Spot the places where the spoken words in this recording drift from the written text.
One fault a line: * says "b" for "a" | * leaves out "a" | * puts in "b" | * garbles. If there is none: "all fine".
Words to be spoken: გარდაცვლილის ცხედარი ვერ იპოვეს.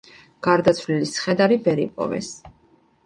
all fine